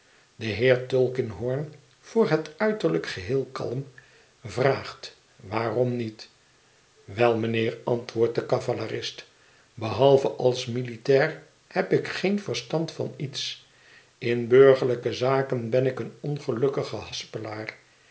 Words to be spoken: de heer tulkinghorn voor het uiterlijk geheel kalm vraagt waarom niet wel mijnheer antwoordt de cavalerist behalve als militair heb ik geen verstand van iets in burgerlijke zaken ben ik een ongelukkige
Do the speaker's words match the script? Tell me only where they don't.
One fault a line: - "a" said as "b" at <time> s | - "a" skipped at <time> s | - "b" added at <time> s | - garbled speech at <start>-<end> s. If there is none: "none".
none